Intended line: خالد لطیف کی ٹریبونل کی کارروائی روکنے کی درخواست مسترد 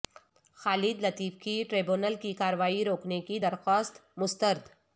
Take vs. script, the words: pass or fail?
pass